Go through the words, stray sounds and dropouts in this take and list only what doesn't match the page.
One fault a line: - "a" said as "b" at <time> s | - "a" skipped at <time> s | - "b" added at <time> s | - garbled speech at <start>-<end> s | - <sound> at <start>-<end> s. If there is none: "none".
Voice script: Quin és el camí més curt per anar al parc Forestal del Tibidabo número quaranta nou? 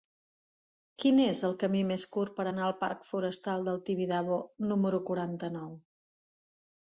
none